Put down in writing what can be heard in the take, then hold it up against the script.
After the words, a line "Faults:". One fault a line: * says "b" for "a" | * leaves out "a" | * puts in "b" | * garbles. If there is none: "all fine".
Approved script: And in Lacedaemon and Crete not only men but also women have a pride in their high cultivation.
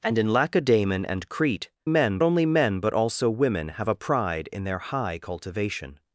And in Lacedaemon and Crete men only men but also women have a pride in their high cultivation.
Faults:
* says "men" for "not"